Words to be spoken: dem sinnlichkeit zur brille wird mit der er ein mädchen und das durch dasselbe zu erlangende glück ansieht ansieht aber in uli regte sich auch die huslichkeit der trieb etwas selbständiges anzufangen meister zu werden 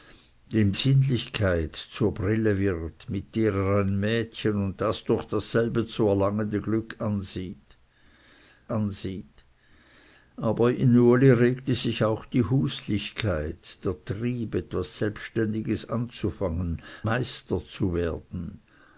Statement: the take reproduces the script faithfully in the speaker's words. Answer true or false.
true